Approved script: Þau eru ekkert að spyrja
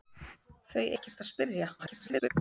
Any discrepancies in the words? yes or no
yes